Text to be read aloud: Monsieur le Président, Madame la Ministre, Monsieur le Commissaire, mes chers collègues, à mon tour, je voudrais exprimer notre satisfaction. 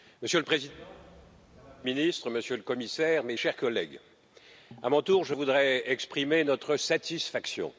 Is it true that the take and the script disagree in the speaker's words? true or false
false